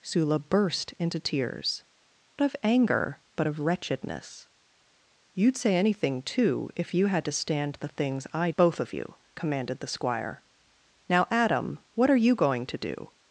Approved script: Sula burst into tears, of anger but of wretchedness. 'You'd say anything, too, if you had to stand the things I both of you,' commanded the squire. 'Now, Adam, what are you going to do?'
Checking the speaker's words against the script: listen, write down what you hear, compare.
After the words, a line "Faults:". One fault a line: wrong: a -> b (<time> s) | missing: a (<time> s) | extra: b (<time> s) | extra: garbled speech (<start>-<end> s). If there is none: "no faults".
Sula burst into tears, of anger but of wretchedness. 'You'd say anything, too, if you had to stand the things I both of you,' commanded the squire. 'Now, Adam, what are you going to do?'
Faults:
no faults